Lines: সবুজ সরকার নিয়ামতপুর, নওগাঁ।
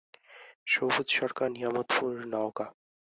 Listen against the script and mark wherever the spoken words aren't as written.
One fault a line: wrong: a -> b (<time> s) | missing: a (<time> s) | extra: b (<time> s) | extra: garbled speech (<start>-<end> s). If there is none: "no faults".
no faults